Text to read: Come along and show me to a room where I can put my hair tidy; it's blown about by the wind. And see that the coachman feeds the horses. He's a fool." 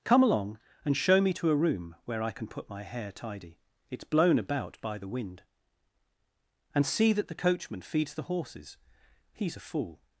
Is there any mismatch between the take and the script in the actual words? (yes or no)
no